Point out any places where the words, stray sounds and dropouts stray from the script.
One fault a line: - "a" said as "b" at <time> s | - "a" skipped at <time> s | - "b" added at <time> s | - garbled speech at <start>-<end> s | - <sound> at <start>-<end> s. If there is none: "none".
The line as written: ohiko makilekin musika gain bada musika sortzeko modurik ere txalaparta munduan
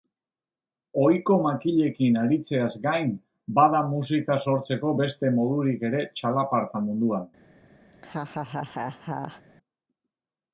- "musika" said as "aritzeaz" at 2.2 s
- "beste" added at 5.0 s
- laugh at 7.9-9.4 s